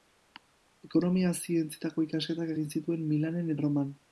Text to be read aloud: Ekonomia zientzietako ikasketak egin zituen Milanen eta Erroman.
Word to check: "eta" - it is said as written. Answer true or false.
false